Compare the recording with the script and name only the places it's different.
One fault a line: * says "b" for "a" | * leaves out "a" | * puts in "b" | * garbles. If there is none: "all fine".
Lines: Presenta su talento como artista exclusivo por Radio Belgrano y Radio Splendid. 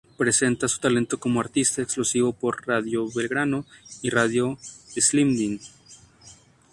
all fine